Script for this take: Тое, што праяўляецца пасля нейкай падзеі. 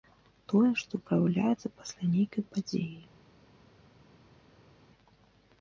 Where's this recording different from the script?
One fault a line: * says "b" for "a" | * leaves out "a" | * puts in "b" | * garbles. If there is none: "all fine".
all fine